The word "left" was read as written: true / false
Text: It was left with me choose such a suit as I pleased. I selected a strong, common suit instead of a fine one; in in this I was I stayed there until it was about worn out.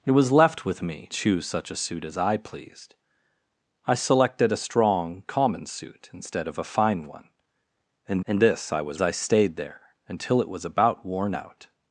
true